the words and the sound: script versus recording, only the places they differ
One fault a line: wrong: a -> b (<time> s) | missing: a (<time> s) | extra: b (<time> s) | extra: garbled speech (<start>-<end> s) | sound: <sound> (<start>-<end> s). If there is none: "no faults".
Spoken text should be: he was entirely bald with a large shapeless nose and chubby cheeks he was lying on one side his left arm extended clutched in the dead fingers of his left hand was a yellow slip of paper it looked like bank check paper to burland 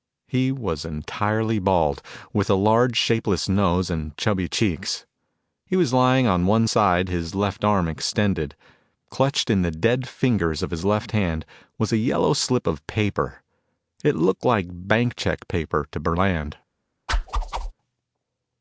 sound: whoosh (17.1-17.7 s)